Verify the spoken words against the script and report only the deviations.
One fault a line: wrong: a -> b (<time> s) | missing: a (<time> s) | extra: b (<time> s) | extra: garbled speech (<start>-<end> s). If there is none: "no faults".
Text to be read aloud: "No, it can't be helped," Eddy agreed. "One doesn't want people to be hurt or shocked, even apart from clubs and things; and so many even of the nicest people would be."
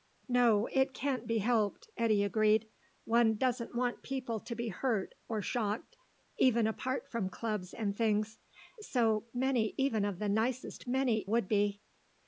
missing: and (8.4 s)
wrong: people -> many (10.9 s)